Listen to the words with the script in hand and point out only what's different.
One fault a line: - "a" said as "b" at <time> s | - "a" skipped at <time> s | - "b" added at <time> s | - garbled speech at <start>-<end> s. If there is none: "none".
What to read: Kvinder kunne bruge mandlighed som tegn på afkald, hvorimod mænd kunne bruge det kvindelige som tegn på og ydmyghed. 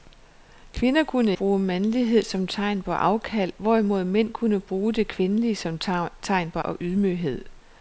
none